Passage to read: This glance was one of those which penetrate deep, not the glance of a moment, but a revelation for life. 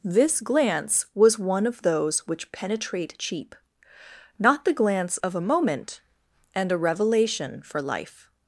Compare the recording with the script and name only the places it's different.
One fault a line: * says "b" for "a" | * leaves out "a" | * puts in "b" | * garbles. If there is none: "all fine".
* says "cheap" for "deep"
* says "and" for "but"